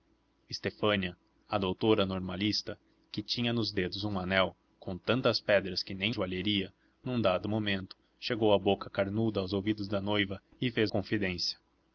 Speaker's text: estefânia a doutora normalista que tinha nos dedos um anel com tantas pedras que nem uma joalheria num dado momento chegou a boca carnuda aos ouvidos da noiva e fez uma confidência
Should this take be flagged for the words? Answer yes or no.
yes